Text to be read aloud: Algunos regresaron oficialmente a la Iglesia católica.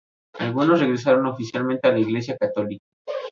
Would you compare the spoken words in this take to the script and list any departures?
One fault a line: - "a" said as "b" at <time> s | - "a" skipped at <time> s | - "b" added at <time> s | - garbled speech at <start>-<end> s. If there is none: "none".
none